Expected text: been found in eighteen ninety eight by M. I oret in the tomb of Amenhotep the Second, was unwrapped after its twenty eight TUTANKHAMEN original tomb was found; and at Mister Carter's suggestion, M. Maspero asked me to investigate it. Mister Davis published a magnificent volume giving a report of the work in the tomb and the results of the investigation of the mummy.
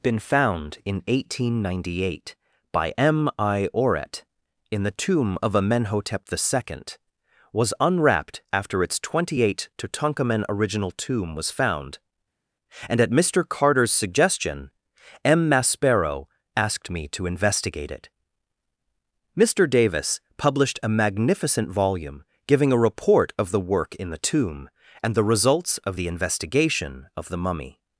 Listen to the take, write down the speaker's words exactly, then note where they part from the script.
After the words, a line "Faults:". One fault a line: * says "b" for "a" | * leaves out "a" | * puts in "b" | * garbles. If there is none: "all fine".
been found in eighteen ninety eight by M. I oret in the tomb of Amenhotep the Second, was unwrapped after its twenty eight TUTANKHAMEN original tomb was found; and at Mister Carter's suggestion, M. Maspero asked me to investigate it. Mister Davis published a magnificent volume giving a report of the work in the tomb and the results of the investigation of the mummy.
Faults:
all fine